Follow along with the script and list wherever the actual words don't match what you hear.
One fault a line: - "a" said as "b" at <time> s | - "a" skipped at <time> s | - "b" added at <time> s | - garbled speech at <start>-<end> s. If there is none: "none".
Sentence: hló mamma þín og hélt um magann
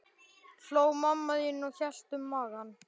none